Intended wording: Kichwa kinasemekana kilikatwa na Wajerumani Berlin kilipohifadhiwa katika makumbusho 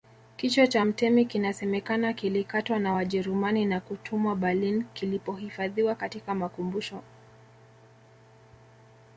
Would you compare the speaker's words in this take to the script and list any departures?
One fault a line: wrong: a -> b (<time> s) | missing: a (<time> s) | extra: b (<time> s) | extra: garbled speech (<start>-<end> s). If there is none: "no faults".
extra: cha mtemi (0.7 s)
extra: na kutumwa (3.7 s)